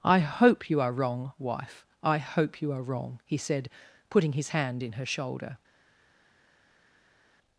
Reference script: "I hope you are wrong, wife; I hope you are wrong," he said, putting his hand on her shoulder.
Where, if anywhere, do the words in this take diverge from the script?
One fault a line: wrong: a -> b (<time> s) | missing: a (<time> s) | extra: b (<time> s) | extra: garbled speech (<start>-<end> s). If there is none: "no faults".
wrong: on -> in (4.8 s)